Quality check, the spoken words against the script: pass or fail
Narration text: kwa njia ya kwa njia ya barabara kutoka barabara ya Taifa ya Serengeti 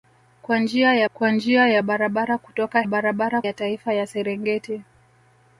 pass